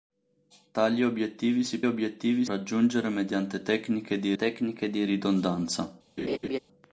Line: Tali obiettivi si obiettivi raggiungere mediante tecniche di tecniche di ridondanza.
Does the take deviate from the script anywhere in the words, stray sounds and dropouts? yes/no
yes